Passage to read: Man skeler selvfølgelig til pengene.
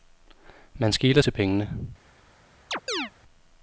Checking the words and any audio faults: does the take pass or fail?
fail